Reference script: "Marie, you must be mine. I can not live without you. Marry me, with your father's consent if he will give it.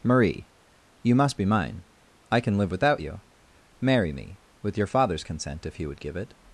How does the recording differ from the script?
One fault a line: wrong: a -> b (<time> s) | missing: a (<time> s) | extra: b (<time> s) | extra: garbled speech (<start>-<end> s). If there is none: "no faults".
missing: not (2.6 s)
wrong: will -> would (5.9 s)